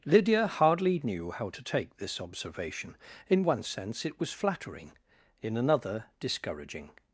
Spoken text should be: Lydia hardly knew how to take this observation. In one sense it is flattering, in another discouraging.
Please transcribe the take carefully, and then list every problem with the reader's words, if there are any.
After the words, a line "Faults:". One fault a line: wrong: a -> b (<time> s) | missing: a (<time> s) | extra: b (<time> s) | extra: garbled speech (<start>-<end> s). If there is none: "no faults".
Lydia hardly knew how to take this observation. In one sense it was flattering, in another discouraging.
Faults:
wrong: is -> was (4.2 s)